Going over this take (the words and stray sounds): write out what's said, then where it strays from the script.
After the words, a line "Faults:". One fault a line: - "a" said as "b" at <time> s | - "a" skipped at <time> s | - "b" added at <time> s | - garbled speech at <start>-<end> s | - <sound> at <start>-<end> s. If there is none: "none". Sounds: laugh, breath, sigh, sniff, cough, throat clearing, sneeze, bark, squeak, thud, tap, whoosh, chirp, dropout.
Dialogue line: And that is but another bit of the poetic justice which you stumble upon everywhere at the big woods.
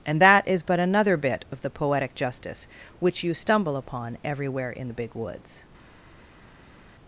And that is but another bit of the poetic justice which you stumble upon everywhere in the big woods.
Faults:
- "at" said as "in" at 4.7 s